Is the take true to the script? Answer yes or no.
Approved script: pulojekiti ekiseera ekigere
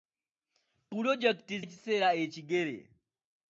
yes